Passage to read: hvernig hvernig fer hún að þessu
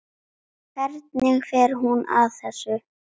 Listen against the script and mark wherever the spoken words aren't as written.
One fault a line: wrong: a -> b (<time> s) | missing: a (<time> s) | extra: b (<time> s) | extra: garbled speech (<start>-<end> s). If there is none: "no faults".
missing: hvernig (1.4 s)